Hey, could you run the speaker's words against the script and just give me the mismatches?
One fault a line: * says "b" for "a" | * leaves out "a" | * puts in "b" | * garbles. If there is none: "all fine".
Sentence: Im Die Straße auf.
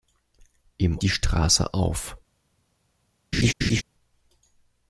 all fine